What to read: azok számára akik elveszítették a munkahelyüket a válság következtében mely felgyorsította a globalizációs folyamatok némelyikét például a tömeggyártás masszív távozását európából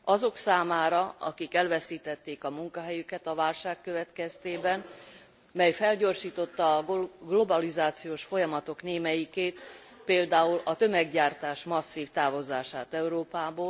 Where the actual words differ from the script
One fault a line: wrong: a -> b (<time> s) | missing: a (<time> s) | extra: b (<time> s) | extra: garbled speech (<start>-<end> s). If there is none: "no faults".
no faults